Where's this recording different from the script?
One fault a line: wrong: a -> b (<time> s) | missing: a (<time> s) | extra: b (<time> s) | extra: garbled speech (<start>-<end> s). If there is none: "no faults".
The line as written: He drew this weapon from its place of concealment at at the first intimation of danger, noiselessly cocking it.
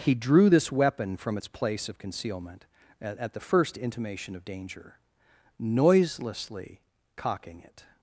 no faults